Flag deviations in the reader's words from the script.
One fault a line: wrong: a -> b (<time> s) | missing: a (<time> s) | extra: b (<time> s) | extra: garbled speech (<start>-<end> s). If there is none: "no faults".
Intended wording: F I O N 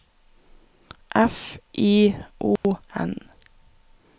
no faults